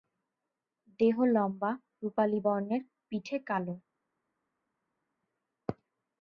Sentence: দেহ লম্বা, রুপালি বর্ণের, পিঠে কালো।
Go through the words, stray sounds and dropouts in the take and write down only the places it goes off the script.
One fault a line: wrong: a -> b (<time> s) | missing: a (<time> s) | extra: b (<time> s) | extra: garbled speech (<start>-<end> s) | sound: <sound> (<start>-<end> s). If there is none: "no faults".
no faults